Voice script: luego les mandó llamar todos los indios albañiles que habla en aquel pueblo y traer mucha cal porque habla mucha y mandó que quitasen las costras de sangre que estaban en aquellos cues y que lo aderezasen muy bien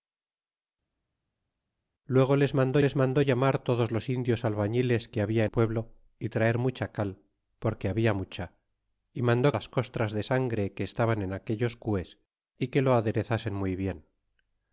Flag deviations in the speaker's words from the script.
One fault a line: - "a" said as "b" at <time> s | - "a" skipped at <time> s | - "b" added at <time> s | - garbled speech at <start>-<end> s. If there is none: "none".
- "les mandó" added at 2.8 s
- "aquel" skipped at 5.5 s
- "que quitasen" skipped at 9.5 s